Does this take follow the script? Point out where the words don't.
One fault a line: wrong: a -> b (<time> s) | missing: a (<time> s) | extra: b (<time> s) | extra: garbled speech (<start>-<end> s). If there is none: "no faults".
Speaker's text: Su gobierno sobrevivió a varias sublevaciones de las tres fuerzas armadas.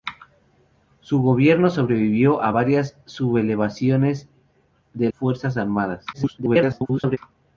missing: las tres (5.1 s)
extra: garbled speech (6.1-7.2 s)